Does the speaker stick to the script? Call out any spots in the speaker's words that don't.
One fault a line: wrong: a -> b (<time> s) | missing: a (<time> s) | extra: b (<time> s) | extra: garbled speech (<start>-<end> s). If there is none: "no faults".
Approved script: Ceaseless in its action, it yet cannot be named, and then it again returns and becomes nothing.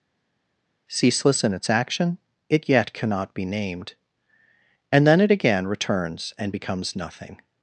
no faults